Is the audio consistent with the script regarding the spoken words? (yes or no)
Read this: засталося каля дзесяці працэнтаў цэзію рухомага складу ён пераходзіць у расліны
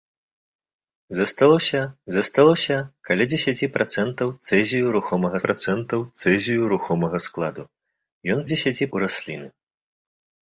no